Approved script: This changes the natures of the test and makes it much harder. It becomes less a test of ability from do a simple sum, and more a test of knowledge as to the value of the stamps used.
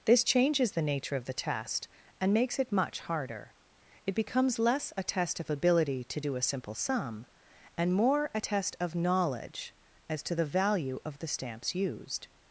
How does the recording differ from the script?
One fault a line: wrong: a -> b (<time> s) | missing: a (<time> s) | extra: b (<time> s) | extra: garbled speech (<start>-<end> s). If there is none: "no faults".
wrong: natures -> nature (0.8 s)
wrong: from -> to (6.0 s)